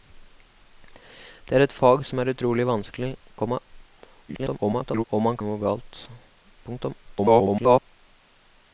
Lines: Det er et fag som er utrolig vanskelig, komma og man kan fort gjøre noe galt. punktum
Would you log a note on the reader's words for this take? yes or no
yes